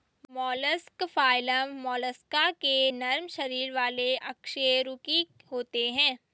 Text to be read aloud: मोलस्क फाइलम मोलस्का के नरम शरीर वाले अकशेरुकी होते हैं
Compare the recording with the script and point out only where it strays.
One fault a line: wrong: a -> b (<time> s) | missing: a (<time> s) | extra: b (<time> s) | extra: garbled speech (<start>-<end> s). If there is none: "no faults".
no faults